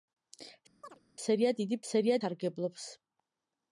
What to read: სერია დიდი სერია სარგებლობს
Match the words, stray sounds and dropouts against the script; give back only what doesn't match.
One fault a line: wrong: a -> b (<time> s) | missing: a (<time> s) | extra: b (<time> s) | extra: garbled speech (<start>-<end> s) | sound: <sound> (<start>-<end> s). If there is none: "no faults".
sound: chirp (0.8-1.0 s)